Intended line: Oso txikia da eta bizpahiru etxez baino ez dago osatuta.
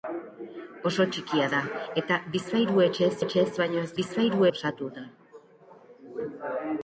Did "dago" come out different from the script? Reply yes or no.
yes